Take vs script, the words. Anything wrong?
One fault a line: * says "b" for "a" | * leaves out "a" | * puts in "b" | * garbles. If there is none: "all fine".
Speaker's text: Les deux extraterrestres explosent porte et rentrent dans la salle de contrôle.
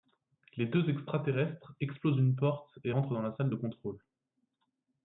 * puts in "une"